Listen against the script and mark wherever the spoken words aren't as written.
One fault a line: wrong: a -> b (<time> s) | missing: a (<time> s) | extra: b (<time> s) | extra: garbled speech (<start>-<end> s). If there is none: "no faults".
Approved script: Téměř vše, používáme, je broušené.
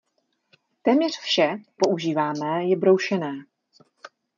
no faults